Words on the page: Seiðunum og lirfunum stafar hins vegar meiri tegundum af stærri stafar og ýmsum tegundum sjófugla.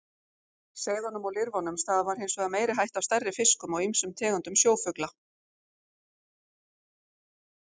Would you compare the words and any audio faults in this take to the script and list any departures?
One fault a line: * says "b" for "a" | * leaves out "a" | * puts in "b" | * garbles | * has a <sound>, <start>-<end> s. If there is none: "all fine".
* says "hætta" for "tegundum"
* says "fiskum" for "stafar"